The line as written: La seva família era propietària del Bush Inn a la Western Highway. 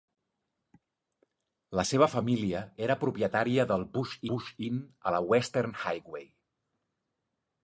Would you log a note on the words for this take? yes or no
yes